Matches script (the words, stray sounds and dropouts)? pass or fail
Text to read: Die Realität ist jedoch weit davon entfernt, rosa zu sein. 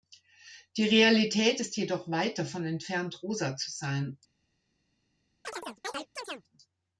fail